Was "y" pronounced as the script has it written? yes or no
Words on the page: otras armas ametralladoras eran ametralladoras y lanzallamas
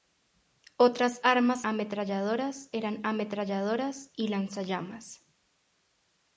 yes